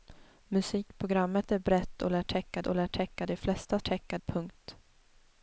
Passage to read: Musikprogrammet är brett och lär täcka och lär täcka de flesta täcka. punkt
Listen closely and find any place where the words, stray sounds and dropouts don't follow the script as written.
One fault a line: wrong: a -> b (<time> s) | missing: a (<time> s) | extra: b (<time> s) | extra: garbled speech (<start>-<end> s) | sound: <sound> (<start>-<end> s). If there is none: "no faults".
no faults